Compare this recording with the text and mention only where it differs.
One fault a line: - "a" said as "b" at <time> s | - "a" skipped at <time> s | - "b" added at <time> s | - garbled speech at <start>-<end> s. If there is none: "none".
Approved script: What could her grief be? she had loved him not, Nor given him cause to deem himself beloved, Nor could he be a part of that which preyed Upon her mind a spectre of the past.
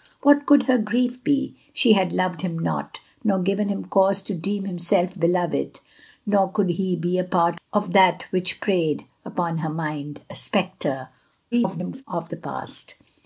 - garbled speech at 11.5-12.0 s